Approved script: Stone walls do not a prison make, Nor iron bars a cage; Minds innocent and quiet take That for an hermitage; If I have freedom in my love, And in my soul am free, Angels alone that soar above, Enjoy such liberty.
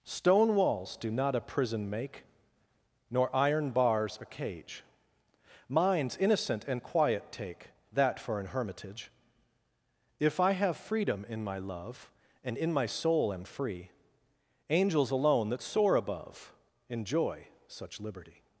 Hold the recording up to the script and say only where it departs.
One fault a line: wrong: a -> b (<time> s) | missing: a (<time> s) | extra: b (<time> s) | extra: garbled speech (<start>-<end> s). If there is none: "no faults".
no faults